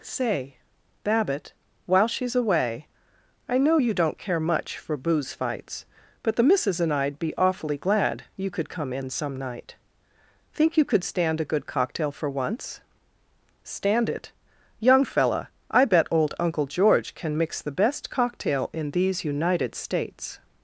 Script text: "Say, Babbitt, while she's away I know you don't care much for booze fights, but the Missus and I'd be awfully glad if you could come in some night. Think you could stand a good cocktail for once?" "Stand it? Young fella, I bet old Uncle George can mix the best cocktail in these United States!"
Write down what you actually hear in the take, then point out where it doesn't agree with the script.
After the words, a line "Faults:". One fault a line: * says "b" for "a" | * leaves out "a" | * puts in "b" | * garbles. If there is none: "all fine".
"Say, Babbitt, while she's away I know you don't care much for booze fights, but the Missus and I'd be awfully glad you could come in some night. Think you could stand a good cocktail for once?" "Stand it? Young fella, I bet old Uncle George can mix the best cocktail in these United States!"
Faults:
* leaves out "if"